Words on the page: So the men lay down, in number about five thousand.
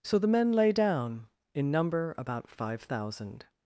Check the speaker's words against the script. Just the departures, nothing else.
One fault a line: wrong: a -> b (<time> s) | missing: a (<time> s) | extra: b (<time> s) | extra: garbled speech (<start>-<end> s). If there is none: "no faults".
no faults